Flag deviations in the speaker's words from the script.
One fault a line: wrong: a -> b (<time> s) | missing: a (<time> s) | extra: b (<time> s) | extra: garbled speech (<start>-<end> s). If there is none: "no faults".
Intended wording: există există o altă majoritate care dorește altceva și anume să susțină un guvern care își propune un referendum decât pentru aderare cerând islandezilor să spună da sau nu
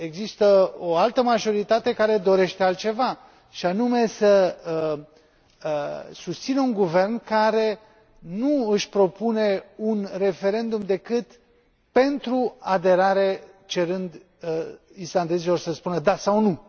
missing: există (0.7 s)
extra: nu (8.2 s)